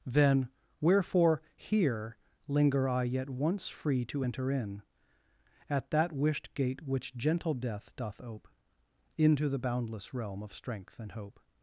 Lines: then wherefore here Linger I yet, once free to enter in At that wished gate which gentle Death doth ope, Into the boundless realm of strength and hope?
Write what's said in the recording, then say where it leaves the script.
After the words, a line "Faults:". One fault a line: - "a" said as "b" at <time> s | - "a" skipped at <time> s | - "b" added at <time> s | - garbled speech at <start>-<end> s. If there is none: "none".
then wherefore here Linger I yet, once free to enter in At that wished gate which gentle Death doth ope, Into the boundless realm of strength and hope?
Faults:
none